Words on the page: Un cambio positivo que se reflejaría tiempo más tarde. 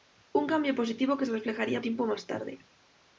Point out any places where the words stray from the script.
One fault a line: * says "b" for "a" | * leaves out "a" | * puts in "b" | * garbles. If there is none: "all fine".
all fine